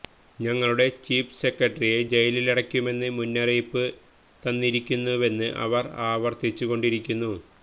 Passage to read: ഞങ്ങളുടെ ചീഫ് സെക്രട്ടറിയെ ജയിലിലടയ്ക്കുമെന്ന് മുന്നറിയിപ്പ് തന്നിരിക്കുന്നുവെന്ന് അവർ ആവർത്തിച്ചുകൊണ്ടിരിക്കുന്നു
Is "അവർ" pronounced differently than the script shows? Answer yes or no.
no